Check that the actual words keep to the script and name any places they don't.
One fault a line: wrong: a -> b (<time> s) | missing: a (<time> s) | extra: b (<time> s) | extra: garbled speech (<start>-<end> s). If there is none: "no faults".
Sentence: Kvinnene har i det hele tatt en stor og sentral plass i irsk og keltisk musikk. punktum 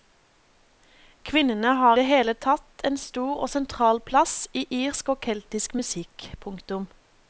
missing: i (2.0 s)